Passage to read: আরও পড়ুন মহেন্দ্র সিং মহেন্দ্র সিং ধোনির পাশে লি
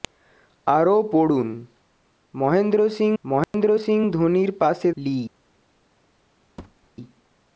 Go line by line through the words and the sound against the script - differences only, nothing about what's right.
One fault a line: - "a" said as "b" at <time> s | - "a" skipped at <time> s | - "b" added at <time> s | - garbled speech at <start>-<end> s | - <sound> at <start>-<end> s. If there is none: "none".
- dropout at 3.4-3.5 s
- thud at 6.6-6.9 s